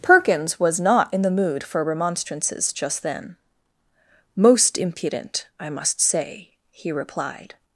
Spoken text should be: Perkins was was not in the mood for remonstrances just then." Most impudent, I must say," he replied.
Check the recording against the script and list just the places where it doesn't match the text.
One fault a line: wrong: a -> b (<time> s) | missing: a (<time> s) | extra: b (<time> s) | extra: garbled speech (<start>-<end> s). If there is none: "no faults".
missing: was (0.8 s)